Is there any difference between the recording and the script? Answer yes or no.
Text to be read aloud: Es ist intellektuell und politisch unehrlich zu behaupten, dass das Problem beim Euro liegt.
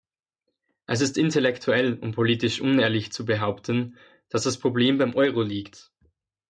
no